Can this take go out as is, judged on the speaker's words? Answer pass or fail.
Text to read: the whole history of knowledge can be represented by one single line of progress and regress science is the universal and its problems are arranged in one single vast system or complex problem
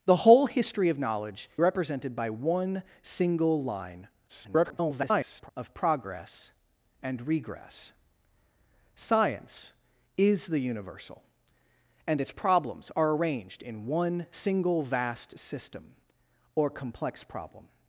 fail